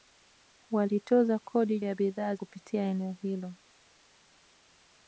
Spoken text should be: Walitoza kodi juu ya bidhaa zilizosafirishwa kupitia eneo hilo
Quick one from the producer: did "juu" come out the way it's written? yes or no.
no